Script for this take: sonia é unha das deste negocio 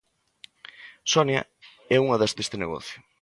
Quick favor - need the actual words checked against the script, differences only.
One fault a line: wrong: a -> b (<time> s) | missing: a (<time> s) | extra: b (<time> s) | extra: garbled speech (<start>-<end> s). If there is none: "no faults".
no faults